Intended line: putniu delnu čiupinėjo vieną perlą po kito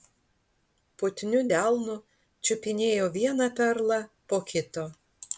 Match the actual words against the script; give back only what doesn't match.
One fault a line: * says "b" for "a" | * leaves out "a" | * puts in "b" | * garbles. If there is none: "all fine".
all fine